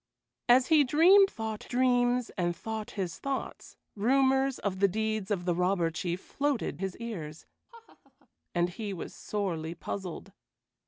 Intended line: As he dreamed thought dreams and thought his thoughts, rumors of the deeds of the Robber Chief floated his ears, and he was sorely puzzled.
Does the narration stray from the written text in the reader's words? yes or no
no